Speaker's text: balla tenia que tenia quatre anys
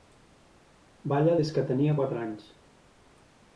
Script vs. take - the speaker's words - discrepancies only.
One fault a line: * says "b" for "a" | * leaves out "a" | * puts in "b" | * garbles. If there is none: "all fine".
* says "des" for "tenia"